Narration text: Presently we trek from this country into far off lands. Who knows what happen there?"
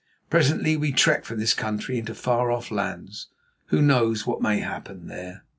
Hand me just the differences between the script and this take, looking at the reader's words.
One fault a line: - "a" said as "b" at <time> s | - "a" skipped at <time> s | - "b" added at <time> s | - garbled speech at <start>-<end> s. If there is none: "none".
- "may" added at 4.4 s